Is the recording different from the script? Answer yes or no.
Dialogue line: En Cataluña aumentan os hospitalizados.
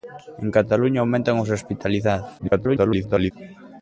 yes